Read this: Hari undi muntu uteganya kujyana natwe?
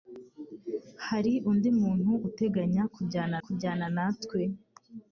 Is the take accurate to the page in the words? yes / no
no